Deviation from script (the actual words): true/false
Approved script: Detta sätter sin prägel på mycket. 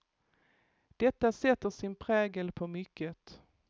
false